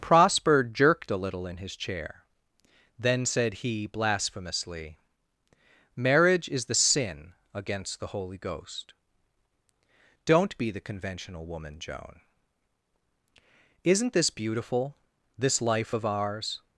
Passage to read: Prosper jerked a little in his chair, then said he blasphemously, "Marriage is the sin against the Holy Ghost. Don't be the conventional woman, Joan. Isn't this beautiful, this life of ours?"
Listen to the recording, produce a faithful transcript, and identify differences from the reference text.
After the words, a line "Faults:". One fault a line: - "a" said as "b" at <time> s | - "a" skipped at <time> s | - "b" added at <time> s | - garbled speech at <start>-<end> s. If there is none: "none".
Prosper jerked a little in his chair, then said he blasphemously, "Marriage is the sin against the Holy Ghost. Don't be the conventional woman, Joan. Isn't this beautiful, this life of ours?"
Faults:
none